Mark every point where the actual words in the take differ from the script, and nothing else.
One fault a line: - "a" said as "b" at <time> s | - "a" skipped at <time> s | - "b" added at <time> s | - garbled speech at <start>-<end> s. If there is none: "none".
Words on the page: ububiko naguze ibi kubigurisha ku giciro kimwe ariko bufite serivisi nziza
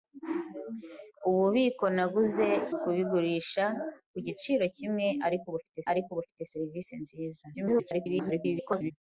- "ibi" skipped at 2.5 s
- "ariko bufite" added at 5.9 s
- garbled speech at 7.5-8.9 s